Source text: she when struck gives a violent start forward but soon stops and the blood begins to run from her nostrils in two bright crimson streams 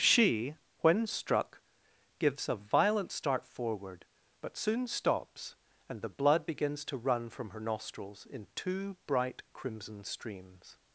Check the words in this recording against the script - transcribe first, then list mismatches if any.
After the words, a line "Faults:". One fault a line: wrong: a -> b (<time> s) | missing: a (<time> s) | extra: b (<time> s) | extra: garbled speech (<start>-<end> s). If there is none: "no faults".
she when struck gives a violent start forward but soon stops and the blood begins to run from her nostrils in two bright crimson streams
Faults:
no faults